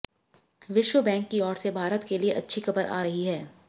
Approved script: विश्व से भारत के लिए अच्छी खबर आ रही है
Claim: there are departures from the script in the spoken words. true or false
true